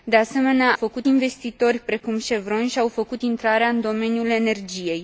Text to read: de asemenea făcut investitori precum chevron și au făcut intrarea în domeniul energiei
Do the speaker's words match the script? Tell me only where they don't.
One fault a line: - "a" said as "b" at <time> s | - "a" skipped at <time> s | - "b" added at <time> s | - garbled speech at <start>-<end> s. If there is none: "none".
none